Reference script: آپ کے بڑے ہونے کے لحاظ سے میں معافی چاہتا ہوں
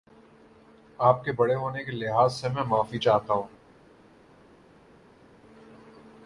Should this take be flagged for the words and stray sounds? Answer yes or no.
no